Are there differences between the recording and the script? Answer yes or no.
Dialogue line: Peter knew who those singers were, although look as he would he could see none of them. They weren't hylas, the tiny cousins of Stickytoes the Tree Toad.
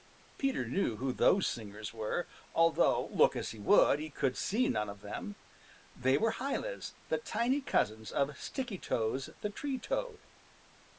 yes